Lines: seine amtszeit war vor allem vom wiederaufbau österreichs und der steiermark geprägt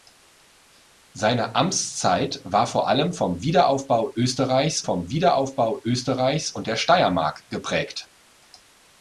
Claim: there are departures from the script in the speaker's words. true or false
true